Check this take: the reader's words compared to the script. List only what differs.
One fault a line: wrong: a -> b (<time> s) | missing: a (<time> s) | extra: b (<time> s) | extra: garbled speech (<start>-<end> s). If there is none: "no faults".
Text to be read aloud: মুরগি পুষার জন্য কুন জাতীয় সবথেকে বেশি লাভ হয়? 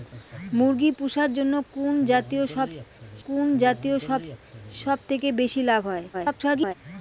extra: কুন জাতীয় (3.3 s)
extra: garbled speech (6.1-6.7 s)